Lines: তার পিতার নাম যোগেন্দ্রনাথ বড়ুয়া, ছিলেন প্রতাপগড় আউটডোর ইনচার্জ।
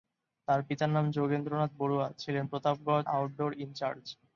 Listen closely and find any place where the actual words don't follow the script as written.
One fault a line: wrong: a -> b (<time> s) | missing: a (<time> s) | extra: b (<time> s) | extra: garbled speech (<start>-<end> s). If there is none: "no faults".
no faults